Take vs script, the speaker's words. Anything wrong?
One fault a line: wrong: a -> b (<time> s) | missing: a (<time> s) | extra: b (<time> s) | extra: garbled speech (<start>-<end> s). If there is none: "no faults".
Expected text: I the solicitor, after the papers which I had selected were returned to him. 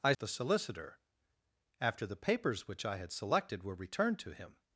no faults